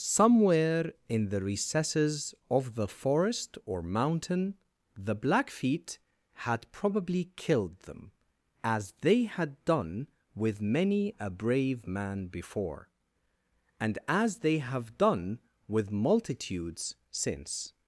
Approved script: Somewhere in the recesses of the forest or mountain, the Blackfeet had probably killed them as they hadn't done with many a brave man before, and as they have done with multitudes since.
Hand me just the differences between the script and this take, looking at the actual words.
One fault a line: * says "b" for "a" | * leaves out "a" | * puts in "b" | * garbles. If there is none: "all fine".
* says "had" for "hadn't"